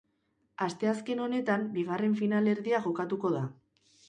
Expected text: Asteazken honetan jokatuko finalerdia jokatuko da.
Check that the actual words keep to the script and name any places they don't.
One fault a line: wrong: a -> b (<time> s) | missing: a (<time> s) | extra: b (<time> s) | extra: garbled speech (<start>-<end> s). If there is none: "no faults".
wrong: jokatuko -> bigarren (1.8 s)